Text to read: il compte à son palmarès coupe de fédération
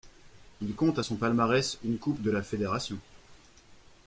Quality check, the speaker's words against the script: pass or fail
fail